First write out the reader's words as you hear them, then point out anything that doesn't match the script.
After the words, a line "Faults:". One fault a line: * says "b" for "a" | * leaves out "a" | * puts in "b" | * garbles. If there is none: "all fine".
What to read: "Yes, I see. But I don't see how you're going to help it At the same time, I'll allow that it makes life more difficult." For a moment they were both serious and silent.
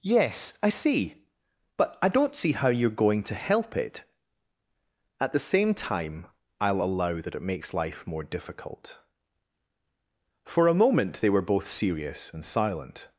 "Yes, I see. But I don't see how you're going to help it At the same time, I'll allow that it makes life more difficult." For a moment they were both serious and silent.
Faults:
all fine